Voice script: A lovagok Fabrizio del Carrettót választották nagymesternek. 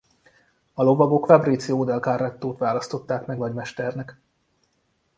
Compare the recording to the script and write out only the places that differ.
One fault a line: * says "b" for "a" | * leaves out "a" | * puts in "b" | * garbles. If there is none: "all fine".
* puts in "meg"